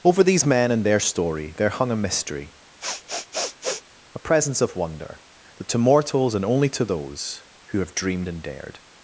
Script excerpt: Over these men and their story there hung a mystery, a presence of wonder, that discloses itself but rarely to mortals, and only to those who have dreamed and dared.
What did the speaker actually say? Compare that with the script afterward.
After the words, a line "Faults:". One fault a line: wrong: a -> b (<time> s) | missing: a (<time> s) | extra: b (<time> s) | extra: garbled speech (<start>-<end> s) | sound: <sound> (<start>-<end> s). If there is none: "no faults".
Over these men and their story there hung a mystery, a presence of wonder, that to mortals, and only to those who have dreamed and dared.
Faults:
sound: sniff (2.8-3.8 s)
missing: discloses itself but rarely (5.7 s)